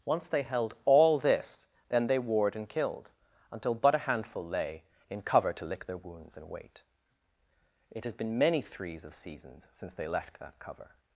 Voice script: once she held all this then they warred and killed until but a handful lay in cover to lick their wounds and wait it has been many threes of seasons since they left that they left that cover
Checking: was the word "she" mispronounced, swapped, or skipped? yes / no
yes